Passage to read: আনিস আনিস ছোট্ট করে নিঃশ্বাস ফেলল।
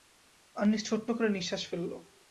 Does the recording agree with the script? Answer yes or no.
no